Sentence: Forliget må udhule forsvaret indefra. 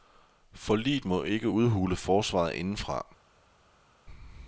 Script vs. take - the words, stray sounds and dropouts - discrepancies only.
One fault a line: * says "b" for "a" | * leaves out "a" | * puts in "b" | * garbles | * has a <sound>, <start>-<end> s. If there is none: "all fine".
* puts in "ikke"